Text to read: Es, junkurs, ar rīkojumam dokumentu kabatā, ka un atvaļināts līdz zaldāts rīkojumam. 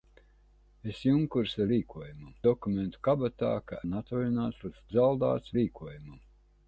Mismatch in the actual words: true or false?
false